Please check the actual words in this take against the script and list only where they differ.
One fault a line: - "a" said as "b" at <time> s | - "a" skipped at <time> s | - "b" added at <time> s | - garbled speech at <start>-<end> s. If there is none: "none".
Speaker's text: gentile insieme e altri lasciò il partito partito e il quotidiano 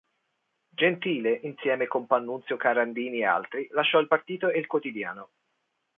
- "con pannunzio carandini" added at 1.9 s
- "partito" skipped at 4.5 s